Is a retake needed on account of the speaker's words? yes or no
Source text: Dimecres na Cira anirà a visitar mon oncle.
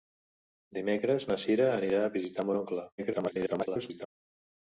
yes